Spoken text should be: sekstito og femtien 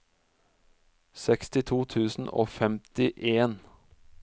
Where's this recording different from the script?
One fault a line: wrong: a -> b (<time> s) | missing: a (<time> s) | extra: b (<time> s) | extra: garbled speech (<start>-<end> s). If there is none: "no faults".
extra: tusen (1.9 s)